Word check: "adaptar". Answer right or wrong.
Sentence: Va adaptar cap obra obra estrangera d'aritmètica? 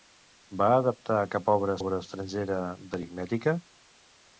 right